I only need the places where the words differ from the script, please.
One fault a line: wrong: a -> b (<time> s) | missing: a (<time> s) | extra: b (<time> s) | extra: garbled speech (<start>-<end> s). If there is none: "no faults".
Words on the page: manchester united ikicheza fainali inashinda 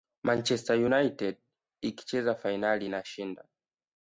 no faults